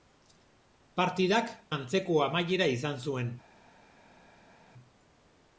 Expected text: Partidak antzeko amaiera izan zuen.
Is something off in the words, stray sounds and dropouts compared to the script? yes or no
no